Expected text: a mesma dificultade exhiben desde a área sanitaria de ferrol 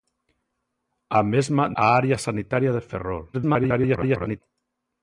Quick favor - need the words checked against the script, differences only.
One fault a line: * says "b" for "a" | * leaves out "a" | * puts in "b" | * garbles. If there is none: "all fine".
* leaves out "dificultade exhiben desde"
* garbles